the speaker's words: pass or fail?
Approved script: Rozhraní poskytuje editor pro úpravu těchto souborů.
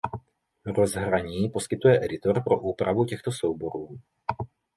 pass